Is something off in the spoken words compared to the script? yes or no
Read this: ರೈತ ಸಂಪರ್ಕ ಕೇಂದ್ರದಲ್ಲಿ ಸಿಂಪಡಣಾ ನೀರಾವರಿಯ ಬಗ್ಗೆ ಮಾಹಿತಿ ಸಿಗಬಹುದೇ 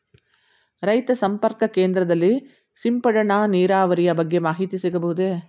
no